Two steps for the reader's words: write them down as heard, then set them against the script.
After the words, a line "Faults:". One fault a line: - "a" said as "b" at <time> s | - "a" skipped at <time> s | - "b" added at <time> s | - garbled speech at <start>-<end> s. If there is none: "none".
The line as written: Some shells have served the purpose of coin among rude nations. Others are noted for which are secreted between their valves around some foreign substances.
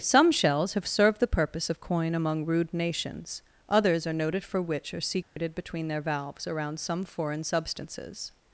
Some shells have served the purpose of coin among rude nations. Others are noted for which are secreted between their valves around some foreign substances.
Faults:
none